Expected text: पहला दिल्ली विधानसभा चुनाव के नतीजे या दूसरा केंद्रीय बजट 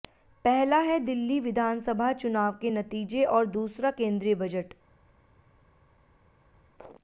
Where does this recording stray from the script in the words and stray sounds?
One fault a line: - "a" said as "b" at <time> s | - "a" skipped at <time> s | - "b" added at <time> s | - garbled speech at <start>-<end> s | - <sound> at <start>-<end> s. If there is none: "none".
- "है" added at 0.8 s
- "या" said as "और" at 3.3 s